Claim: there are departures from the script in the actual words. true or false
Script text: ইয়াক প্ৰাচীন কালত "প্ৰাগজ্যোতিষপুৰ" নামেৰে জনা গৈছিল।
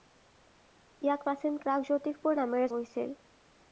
true